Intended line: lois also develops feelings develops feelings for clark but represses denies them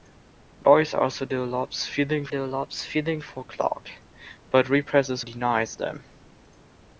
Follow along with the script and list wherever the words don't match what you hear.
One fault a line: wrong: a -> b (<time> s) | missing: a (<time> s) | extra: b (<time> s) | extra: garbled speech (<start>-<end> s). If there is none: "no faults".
no faults